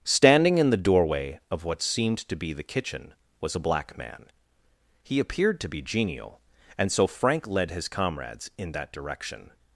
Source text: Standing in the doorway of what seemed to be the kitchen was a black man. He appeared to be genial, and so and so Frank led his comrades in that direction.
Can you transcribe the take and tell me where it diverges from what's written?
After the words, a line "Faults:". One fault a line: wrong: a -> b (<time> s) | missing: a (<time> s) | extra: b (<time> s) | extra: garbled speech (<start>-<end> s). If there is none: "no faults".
Standing in the doorway of what seemed to be the kitchen was a black man. He appeared to be genial, and so Frank led his comrades in that direction.
Faults:
missing: and so (7.0 s)